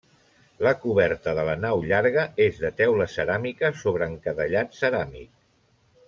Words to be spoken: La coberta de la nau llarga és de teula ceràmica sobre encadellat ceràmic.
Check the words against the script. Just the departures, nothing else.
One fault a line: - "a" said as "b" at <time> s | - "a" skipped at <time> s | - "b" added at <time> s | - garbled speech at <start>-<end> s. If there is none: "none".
none